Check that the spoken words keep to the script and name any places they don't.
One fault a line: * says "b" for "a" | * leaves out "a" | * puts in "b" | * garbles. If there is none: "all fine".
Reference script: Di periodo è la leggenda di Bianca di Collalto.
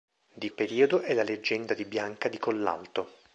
all fine